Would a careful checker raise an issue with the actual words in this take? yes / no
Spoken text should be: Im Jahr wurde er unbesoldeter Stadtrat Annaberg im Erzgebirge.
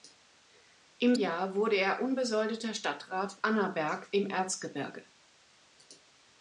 no